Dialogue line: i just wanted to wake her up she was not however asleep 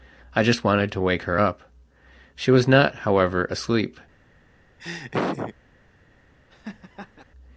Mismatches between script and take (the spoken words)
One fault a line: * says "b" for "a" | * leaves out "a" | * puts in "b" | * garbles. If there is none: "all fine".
all fine